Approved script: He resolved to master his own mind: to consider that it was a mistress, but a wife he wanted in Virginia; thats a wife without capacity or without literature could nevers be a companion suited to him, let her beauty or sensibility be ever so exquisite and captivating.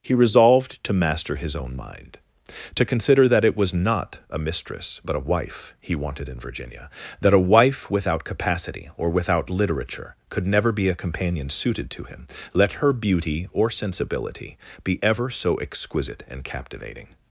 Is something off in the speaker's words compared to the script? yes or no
yes